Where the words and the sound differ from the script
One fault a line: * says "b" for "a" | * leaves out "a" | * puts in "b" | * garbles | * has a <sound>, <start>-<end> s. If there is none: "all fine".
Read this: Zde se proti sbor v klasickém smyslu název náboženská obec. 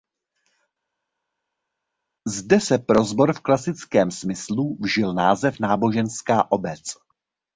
* says "pro" for "proti"
* puts in "vžil"